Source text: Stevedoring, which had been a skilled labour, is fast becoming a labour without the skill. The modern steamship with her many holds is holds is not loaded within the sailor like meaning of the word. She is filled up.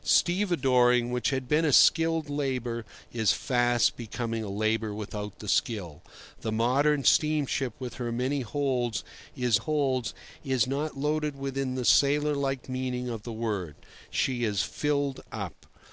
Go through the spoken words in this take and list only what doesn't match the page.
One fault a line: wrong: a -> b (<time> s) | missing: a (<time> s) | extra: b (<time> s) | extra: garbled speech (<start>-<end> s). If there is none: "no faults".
no faults